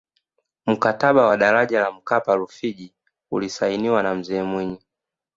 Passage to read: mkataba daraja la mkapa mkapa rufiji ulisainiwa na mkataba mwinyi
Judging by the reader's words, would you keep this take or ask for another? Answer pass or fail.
fail